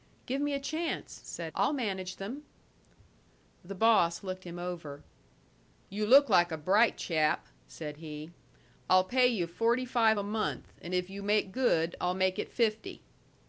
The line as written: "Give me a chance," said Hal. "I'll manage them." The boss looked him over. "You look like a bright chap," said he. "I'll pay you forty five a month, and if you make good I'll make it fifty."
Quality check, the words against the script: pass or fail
fail